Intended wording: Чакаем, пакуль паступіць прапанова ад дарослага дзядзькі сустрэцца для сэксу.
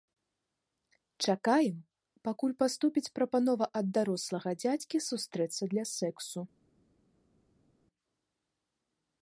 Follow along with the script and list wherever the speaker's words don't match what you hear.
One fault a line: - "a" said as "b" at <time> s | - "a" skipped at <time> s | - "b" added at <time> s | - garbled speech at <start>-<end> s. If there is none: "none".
none